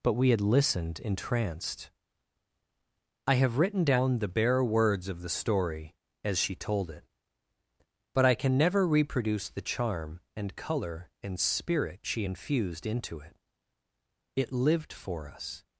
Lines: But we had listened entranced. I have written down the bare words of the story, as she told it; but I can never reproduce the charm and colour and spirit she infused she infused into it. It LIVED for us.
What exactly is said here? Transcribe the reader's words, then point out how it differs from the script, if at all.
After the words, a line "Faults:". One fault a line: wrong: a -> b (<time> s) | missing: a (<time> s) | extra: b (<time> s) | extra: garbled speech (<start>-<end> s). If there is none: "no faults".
But we had listened entranced. I have written down the bare words of the story, as she told it; but I can never reproduce the charm and colour and spirit she infused into it. It LIVED for us.
Faults:
missing: she infused (12.9 s)